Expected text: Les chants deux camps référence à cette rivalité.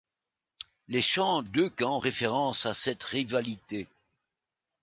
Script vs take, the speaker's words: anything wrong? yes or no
no